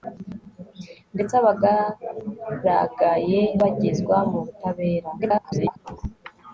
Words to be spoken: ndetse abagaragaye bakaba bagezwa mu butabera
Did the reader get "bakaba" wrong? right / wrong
wrong